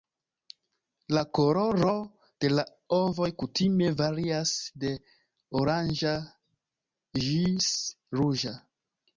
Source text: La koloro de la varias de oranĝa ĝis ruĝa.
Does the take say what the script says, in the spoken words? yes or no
no